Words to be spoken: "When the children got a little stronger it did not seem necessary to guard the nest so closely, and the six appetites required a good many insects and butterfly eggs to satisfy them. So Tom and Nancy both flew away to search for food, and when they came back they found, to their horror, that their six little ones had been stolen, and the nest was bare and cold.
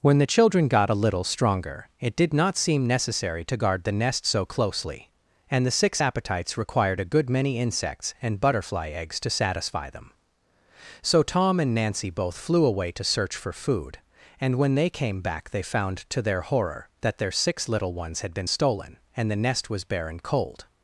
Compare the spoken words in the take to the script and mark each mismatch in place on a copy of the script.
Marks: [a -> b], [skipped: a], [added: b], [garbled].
"When the children got a little stronger it did not seem necessary to guard the nest so closely, and the six appetites required a good many insects and butterfly eggs to satisfy them. So Tom and Nancy both flew away to search for food, and when they came back they found, to their horror, that their six little ones had been stolen, and the nest was bare and cold.